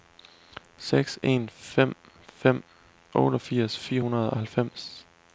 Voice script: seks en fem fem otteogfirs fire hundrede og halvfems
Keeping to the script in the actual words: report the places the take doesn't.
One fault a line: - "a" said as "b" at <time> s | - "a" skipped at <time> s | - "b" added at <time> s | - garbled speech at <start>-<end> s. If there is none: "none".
none